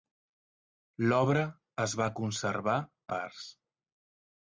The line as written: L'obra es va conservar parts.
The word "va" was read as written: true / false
true